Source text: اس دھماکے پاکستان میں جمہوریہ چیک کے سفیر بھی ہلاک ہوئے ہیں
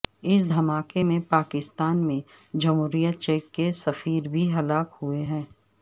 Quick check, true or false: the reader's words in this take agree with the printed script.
false